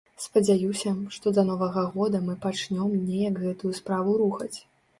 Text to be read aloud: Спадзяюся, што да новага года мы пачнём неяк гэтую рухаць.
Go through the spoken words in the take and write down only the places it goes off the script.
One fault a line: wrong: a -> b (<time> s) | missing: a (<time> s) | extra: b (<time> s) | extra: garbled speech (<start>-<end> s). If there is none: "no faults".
extra: справу (3.8 s)